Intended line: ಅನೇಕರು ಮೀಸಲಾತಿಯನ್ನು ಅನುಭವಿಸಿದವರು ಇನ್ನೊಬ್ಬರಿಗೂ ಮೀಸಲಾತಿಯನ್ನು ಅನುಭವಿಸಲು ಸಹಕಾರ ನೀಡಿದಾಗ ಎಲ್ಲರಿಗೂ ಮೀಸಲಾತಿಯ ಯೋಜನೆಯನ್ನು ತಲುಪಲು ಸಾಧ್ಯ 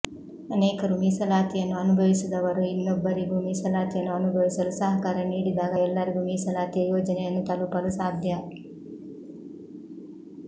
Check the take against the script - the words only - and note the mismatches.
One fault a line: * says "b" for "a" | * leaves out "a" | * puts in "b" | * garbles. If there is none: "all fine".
all fine